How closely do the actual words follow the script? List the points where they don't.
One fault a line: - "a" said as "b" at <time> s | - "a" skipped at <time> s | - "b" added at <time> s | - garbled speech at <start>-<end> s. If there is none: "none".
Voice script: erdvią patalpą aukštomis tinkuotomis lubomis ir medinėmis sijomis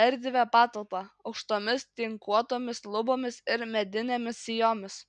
none